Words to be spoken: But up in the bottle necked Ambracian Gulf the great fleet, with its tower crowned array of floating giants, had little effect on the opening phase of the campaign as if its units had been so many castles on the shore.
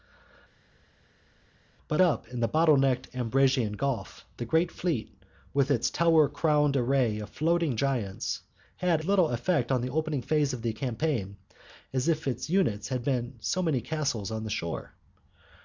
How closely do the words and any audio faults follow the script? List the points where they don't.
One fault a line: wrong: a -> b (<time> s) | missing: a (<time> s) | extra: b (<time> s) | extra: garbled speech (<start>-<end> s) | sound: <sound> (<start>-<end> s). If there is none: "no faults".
no faults